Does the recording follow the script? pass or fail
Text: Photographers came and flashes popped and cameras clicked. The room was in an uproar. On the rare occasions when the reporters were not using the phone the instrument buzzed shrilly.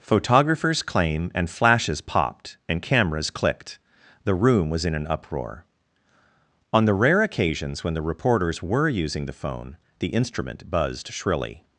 fail